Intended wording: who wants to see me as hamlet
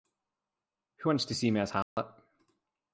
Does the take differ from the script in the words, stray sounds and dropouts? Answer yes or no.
yes